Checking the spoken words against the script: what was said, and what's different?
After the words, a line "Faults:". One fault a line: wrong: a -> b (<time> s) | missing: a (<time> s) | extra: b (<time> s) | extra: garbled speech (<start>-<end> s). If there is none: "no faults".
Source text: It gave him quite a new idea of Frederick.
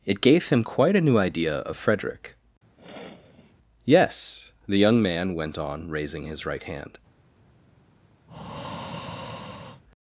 It gave him quite a new idea of Frederick. "Yes," the young man went on, raising his right hand
Faults:
extra: Yes the young man went on raising his right hand (3.8 s)